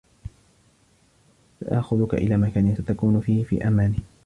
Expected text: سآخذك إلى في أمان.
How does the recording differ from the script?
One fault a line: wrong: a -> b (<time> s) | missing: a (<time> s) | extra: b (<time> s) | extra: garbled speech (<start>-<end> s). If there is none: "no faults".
extra: مكان ستكون فيه (2.4 s)